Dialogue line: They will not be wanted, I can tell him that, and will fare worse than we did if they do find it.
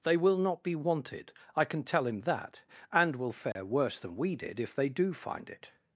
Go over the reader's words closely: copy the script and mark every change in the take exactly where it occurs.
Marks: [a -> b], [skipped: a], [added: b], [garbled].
They will not be wanted, I can tell him that, and will fare worse than we did if they do find it.